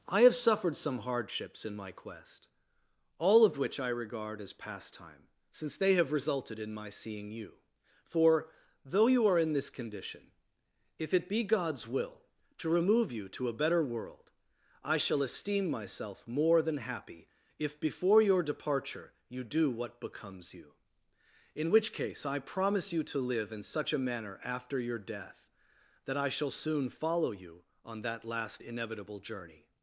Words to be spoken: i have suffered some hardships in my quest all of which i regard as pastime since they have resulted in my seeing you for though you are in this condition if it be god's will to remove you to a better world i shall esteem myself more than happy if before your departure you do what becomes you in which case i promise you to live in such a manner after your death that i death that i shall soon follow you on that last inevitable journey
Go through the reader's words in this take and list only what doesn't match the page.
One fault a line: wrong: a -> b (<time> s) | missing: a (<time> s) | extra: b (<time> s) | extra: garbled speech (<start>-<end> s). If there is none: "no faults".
missing: death that i (26.3 s)